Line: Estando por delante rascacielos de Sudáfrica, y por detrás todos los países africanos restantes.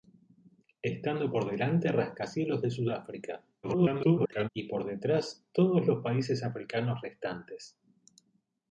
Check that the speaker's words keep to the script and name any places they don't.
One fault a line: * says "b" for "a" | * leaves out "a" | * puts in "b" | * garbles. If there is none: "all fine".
* garbles